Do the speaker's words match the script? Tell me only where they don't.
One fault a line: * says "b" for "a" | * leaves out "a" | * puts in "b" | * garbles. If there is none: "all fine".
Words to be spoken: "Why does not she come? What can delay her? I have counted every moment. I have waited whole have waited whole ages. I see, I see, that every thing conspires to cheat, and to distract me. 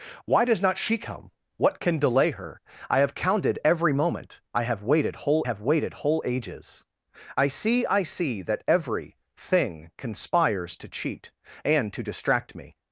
all fine